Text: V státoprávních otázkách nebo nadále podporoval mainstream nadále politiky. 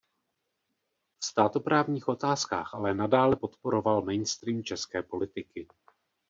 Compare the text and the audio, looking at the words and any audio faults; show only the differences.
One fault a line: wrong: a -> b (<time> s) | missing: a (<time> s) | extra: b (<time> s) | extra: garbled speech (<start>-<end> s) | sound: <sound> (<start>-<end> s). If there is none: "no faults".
wrong: nebo -> ale (2.7 s)
wrong: nadále -> české (4.6 s)